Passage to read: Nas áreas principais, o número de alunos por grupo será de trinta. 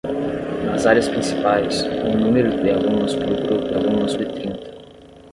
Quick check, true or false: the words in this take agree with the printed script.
false